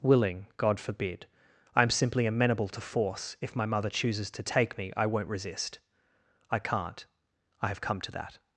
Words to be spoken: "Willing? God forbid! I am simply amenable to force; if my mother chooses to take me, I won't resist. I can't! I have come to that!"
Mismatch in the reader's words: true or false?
false